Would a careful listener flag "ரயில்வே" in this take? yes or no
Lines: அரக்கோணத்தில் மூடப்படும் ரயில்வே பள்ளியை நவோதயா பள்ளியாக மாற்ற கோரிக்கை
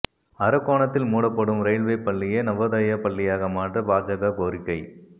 no